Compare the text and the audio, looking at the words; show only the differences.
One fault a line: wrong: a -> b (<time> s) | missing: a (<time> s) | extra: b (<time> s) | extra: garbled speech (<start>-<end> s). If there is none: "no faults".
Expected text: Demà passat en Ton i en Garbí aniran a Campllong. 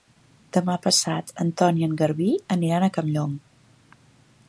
no faults